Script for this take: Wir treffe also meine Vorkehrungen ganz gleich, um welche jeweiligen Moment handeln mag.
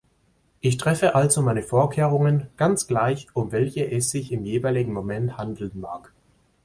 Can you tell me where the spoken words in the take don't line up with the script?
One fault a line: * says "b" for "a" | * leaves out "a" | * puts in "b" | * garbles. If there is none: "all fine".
* says "Ich" for "Wir"
* puts in "es sich im"